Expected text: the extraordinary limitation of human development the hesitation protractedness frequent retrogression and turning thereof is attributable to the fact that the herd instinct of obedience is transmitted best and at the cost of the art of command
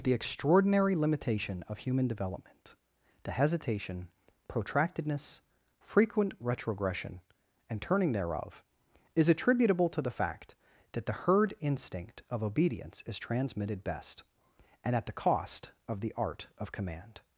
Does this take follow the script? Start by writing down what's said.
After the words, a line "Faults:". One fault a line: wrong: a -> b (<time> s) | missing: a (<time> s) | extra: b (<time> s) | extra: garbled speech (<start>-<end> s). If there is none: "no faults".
the extraordinary limitation of human development the hesitation protractedness frequent retrogression and turning thereof is attributable to the fact that the herd instinct of obedience is transmitted best and at the cost of the art of command
Faults:
no faults